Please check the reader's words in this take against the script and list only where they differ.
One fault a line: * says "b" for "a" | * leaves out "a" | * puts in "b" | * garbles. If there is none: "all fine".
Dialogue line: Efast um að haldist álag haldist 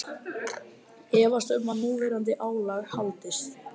* says "núverandi" for "haldist"